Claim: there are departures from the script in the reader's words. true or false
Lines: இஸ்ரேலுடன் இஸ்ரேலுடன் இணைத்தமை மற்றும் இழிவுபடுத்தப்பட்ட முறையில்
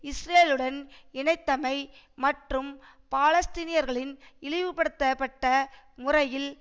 true